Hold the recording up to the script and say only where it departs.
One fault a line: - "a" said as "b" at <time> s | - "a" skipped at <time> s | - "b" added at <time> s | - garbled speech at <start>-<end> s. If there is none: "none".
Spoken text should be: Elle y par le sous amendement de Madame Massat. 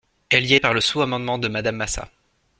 none